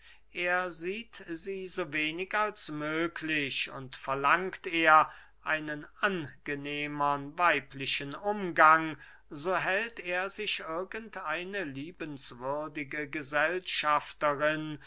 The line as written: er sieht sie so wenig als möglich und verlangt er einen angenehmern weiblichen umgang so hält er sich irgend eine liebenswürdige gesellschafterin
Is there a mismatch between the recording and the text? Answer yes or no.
no